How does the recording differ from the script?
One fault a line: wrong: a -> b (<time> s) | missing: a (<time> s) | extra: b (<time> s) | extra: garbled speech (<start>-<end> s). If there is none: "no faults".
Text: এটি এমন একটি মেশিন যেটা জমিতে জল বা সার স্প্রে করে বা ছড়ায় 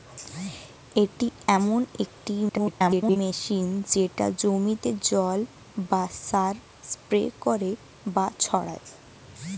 extra: garbled speech (2.5-3.2 s)